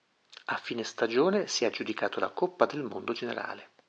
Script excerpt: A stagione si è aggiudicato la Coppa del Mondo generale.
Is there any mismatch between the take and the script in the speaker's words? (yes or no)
yes